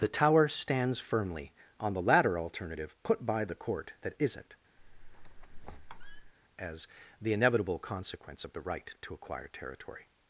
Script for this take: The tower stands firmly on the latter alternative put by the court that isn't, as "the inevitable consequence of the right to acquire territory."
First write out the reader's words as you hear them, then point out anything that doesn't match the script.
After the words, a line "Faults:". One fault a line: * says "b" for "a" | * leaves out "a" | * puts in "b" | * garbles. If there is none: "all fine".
The tower stands firmly on the latter alternative put by the court that isn't, as "the inevitable consequence of the right to acquire territory."
Faults:
all fine